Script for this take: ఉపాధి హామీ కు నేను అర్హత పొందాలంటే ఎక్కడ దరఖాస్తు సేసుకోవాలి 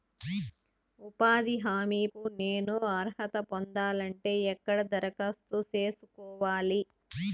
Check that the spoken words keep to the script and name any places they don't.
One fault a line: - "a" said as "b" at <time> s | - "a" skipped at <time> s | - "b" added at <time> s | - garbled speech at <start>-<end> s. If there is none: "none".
none